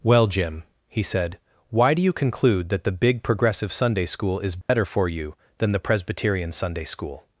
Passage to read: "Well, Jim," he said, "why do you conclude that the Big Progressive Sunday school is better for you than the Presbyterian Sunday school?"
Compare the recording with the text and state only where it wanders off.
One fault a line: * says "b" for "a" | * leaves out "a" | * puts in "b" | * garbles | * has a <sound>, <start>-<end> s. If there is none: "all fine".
* has a dropout, 4.6-4.7 s